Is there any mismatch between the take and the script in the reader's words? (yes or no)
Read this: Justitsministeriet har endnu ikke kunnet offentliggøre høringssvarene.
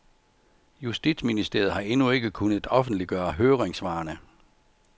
no